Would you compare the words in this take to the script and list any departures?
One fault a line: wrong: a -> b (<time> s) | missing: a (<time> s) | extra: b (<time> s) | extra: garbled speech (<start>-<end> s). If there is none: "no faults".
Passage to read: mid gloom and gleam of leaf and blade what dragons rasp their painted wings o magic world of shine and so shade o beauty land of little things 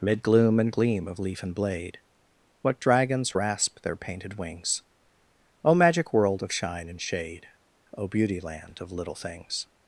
missing: so (7.0 s)